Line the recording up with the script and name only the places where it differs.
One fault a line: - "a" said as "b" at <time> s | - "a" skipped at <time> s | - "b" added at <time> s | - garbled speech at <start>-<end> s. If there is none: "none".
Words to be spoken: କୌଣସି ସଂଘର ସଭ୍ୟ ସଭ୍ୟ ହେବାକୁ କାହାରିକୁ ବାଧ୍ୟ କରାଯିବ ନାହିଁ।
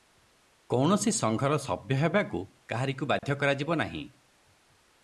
- "ସଭ୍ୟ" skipped at 2.0 s